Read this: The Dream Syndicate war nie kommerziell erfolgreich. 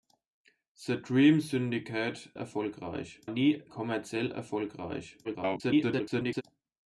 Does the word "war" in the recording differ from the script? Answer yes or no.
yes